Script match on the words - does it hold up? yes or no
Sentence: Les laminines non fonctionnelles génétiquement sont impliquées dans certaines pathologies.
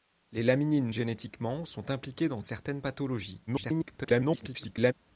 no